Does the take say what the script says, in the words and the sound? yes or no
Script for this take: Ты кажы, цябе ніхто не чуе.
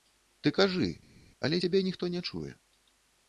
no